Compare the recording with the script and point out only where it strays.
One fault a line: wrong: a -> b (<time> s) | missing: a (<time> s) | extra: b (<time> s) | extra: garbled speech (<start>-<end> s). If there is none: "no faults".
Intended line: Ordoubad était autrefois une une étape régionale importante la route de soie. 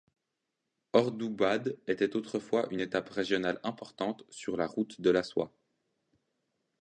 missing: une (2.8 s)
extra: sur (4.3 s)
extra: la (5.1 s)